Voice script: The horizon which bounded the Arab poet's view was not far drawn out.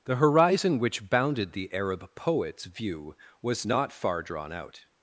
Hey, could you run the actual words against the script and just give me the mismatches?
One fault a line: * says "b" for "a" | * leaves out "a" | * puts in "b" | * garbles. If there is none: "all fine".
all fine